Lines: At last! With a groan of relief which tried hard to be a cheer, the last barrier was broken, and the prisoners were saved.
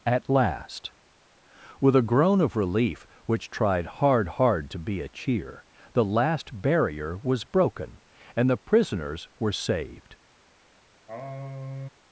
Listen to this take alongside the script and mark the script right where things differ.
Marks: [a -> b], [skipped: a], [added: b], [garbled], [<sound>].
At last! With a groan of relief which tried hard [added: hard] to be a cheer, the last barrier was broken, and the prisoners were saved. [sigh]